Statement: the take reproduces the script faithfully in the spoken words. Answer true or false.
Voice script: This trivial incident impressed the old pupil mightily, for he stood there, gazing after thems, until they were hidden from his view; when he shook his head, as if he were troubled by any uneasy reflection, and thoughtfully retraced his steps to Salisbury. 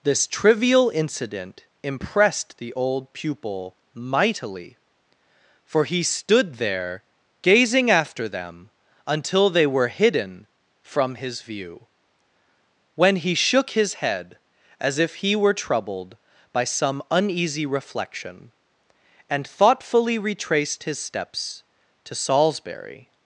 false